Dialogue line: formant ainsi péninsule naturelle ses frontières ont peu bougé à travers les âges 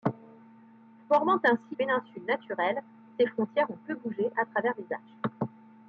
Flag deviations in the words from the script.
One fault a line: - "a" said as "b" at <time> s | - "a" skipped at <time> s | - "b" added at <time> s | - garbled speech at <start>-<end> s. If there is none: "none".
none